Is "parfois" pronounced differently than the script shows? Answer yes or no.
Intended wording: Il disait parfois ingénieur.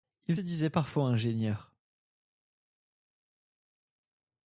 no